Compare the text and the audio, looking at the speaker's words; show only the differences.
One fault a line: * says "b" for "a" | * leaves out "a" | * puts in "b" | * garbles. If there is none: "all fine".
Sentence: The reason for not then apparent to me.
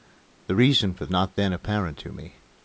all fine